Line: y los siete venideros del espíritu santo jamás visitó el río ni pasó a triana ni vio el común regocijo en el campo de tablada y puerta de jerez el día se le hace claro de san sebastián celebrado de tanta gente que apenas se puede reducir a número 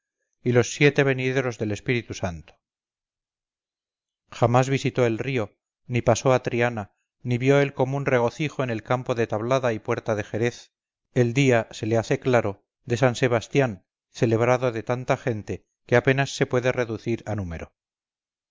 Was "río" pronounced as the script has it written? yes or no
yes